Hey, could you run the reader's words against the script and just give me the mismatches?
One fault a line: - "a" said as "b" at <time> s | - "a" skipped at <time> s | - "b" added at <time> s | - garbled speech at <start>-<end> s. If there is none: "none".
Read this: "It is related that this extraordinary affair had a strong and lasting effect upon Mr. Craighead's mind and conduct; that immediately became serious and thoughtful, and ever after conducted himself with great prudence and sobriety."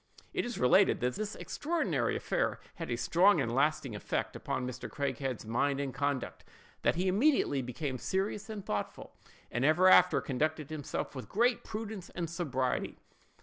- "he" added at 6.9 s